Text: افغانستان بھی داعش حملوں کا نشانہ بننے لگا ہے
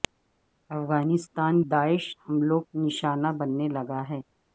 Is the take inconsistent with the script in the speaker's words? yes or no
yes